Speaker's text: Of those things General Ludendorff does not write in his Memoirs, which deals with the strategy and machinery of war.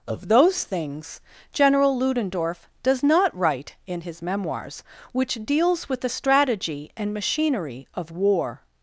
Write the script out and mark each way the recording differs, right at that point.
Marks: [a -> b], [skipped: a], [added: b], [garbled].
Of those things General Ludendorff does not write in his Memoirs, which deals with the strategy and machinery of war.